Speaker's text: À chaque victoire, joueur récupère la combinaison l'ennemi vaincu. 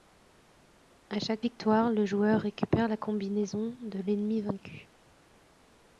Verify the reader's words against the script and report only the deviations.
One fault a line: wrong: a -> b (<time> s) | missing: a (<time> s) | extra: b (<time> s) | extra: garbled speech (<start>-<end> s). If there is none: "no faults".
extra: le (1.9 s)
extra: de (3.8 s)